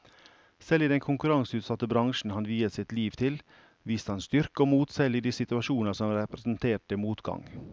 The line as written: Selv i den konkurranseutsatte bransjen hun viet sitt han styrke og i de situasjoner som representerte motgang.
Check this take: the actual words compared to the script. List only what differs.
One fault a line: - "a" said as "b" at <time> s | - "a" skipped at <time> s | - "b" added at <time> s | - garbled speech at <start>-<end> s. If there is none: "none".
- "hun" said as "han" at 2.4 s
- "liv til viste" added at 2.9 s
- "mot selv" added at 4.7 s